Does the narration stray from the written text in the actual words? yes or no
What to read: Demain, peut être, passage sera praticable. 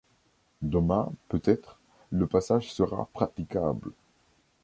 yes